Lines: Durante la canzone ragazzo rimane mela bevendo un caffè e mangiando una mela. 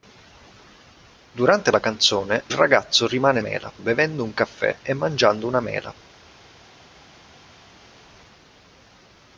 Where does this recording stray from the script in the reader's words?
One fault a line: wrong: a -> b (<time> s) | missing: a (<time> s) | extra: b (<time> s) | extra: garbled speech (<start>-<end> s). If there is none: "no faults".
no faults